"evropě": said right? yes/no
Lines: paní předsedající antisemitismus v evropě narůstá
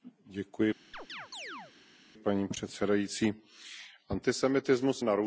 no